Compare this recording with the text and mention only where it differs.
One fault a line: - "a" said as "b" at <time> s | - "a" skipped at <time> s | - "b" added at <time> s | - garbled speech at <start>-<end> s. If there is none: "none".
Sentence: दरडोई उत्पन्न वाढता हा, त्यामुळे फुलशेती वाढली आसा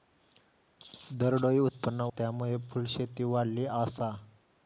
- "वाढता हा" skipped at 2.1 s